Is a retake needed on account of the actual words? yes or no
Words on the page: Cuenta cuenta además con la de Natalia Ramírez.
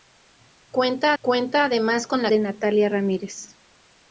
no